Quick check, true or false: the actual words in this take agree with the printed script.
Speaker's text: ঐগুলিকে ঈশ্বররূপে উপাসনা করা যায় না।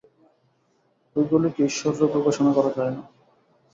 true